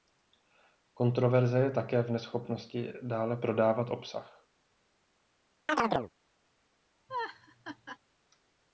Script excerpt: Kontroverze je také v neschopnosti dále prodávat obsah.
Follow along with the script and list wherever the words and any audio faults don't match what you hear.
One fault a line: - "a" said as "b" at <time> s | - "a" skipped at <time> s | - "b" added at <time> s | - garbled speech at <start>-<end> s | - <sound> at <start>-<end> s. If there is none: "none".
- chirp at 5.7-6.1 s
- laugh at 7.1-8.0 s